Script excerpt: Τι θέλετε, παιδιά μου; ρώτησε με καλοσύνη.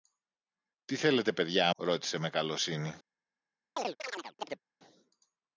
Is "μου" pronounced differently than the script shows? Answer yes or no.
yes